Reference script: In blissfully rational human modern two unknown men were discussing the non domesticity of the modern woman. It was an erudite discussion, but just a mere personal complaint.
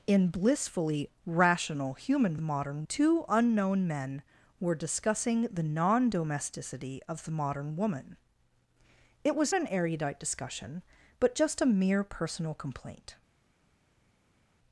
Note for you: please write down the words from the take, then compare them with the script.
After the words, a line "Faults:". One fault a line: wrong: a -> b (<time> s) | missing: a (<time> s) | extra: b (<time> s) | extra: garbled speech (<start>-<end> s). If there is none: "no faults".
In blissfully rational human modern two unknown men were discussing the non domesticity of the modern woman. It was an erudite discussion, but just a mere personal complaint.
Faults:
no faults